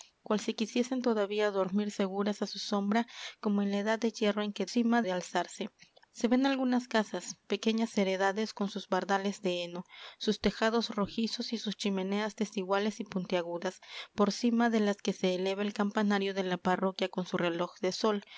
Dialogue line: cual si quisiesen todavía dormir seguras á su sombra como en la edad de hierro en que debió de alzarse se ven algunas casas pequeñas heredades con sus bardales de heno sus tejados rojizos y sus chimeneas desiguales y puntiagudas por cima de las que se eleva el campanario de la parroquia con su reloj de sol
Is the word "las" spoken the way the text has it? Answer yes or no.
yes